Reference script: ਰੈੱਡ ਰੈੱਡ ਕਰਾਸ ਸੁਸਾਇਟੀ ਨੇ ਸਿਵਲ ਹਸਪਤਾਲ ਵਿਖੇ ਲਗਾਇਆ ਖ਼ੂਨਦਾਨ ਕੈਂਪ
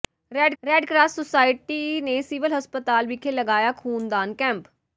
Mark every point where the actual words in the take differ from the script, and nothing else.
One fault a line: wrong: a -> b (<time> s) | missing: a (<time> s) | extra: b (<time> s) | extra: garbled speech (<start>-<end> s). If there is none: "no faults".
no faults